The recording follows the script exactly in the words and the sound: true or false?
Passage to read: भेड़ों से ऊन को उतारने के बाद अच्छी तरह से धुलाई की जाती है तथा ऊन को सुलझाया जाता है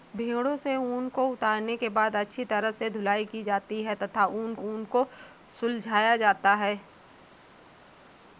false